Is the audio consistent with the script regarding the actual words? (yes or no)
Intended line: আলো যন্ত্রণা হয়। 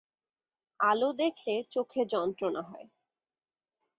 no